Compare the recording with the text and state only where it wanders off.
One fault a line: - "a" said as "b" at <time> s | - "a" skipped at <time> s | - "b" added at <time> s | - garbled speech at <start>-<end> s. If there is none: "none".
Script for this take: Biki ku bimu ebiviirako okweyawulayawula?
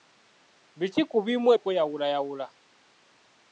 - "ebiviirako" skipped at 1.5 s